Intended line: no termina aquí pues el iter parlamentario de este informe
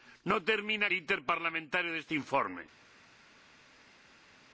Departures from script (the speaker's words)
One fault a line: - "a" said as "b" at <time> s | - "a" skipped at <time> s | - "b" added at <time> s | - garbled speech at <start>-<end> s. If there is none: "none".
- "aquí pues el" skipped at 0.9 s